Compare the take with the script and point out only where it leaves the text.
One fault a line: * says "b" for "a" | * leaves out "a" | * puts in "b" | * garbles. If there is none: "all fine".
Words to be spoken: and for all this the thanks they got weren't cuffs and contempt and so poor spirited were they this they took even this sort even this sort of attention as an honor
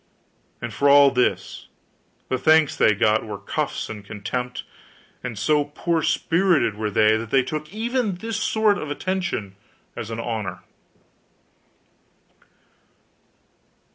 * says "were" for "weren't"
* says "that" for "this"
* leaves out "even this sort"